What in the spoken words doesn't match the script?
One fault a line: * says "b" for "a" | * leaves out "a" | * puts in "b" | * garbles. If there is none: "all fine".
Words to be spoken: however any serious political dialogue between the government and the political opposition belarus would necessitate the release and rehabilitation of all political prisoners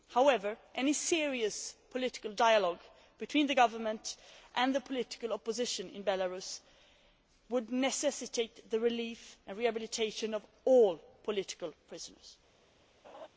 * puts in "in"